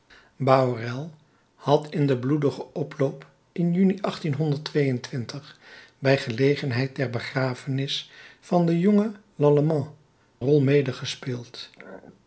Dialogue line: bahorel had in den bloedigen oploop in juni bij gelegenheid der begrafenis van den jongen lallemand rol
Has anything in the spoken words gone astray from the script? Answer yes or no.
no